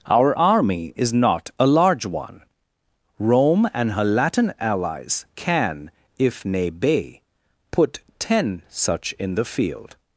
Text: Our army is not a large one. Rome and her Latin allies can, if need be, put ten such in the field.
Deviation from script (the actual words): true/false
true